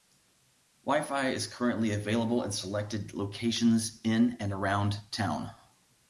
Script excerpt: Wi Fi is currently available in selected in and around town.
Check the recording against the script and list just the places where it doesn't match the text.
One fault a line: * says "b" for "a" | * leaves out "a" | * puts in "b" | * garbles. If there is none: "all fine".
* puts in "locations"